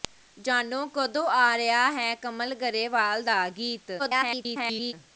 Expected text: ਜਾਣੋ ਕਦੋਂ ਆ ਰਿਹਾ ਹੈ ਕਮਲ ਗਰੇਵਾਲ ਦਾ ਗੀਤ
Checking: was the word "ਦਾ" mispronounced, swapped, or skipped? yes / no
no